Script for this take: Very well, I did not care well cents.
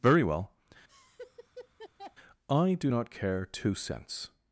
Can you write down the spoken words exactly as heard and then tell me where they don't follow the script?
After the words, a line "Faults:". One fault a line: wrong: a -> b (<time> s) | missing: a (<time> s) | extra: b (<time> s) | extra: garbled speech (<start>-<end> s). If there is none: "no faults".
Very well, I do not care two cents.
Faults:
wrong: did -> do (2.7 s)
wrong: well -> two (3.4 s)